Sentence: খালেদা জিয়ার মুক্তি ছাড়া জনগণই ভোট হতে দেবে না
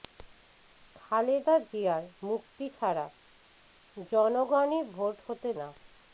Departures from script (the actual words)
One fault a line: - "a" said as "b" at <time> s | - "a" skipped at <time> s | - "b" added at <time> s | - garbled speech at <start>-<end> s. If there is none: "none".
- "দেবে" skipped at 5.5 s